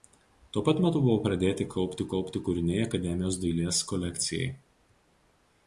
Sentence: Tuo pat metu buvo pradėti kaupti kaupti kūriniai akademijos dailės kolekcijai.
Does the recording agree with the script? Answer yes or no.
yes